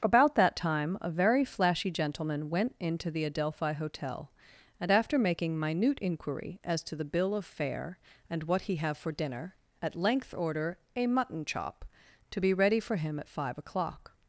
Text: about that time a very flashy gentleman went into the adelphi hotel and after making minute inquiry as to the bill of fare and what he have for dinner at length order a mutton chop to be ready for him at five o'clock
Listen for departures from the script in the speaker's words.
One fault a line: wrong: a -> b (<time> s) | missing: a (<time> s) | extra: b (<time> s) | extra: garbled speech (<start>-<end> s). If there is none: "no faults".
no faults